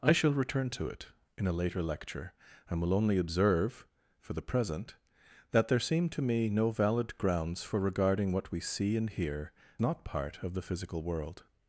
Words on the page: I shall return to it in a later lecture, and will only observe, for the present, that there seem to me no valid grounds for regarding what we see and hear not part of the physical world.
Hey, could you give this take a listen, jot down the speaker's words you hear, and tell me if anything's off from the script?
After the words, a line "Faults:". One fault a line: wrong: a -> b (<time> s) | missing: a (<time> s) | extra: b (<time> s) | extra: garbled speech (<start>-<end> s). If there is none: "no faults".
I shall return to it in a later lecture, and will only observe, for the present, that there seem to me no valid grounds for regarding what we see and hear not part of the physical world.
Faults:
no faults